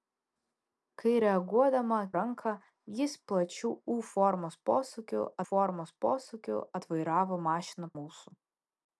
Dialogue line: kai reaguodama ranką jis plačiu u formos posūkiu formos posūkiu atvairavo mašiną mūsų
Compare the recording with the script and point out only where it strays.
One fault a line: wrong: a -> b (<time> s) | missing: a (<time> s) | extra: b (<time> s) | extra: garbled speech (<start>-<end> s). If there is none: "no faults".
no faults